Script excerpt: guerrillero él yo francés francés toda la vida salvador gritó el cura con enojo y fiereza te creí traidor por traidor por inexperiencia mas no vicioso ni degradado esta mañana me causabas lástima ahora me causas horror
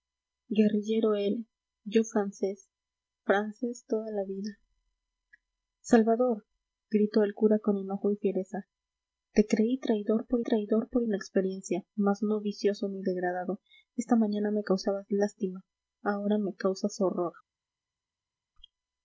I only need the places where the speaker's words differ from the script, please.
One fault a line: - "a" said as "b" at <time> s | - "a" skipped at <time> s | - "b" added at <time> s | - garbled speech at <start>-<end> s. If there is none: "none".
none